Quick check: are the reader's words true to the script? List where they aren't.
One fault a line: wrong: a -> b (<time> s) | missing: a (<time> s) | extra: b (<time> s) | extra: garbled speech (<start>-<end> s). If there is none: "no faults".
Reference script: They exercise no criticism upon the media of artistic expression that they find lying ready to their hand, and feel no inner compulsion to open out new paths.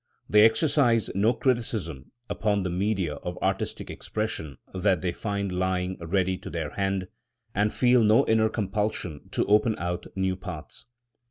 no faults